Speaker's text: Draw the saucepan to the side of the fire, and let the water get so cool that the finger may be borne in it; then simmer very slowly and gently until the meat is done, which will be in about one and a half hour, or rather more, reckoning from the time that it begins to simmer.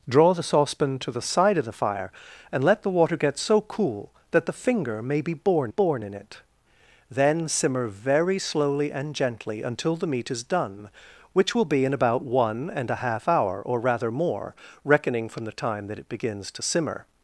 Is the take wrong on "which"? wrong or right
right